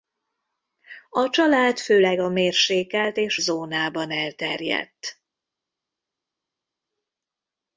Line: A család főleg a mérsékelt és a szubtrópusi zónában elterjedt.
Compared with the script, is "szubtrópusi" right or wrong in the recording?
wrong